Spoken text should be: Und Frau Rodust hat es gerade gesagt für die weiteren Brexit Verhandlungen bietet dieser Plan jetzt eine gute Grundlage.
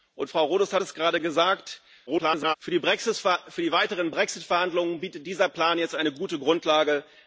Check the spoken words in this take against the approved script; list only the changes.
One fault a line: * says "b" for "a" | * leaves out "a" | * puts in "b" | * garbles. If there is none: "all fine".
* garbles